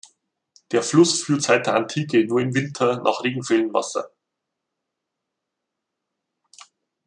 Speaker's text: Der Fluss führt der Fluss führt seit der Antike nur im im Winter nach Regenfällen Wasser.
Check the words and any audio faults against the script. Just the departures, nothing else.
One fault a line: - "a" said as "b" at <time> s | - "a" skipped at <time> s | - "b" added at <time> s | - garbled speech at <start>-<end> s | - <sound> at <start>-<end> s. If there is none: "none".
- "der Fluss führt" skipped at 1.4 s
- "im" skipped at 2.5 s